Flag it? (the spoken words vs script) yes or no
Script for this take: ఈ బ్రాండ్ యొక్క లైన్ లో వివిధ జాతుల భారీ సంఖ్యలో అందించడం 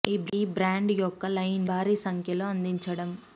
yes